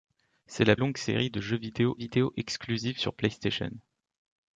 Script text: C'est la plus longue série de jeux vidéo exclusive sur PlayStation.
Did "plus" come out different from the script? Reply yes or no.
yes